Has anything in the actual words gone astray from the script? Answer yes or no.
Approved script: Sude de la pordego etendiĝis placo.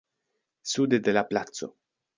yes